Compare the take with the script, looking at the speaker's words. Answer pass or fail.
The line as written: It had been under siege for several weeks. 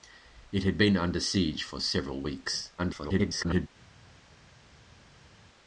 fail